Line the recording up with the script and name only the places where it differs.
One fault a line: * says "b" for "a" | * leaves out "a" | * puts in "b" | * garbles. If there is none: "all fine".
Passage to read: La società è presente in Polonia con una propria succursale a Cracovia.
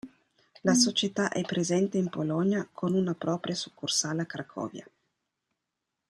all fine